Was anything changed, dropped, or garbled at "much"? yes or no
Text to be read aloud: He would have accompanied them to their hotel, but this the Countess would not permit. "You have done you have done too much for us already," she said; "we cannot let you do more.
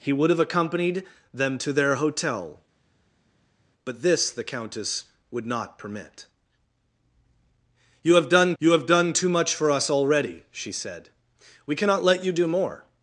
no